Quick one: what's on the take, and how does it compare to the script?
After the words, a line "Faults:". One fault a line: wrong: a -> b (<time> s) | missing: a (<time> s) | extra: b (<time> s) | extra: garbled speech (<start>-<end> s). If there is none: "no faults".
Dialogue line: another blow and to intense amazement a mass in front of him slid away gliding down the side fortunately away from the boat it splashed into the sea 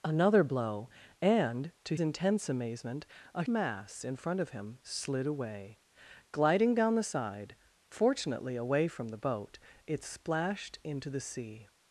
another blow and to intense amazement a mass in front of him slid away gliding down the side fortunately away from the boat it splashed into the sea
Faults:
no faults